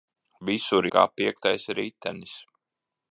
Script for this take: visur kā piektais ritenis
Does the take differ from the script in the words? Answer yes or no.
no